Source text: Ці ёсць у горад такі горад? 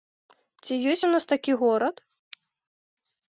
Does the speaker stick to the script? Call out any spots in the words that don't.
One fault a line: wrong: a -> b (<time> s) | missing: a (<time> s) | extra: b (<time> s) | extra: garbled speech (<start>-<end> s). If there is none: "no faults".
wrong: горад -> нас (1.2 s)